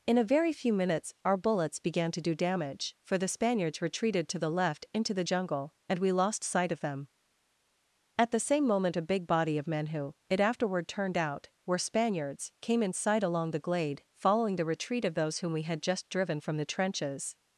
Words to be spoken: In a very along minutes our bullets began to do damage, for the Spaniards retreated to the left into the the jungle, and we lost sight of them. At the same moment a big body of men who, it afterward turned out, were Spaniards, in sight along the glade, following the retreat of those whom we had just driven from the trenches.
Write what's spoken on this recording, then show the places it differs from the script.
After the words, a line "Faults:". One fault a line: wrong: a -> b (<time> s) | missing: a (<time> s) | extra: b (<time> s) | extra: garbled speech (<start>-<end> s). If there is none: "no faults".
In a very few minutes our bullets began to do damage, for the Spaniards retreated to the left into the jungle, and we lost sight of them. At the same moment a big body of men who, it afterward turned out, were Spaniards, came in sight along the glade, following the retreat of those whom we had just driven from the trenches.
Faults:
wrong: along -> few (0.5 s)
missing: the (5.2 s)
extra: came (12.6 s)